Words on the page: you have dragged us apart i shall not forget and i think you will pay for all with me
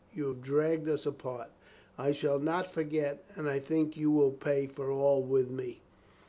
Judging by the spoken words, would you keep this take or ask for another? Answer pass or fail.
pass